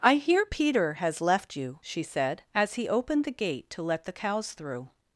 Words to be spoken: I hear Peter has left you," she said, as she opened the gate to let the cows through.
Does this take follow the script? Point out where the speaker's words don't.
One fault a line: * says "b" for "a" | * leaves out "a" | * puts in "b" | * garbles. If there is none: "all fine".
* says "he" for "she"